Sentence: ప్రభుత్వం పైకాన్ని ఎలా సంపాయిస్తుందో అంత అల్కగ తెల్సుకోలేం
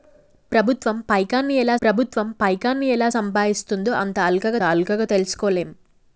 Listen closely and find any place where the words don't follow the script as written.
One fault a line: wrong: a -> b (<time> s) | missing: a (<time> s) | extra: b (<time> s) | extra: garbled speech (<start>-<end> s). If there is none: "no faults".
extra: ప్రభుత్వం పైకాన్ని ఎలా (1.8 s)
extra: అల్కగ (4.6 s)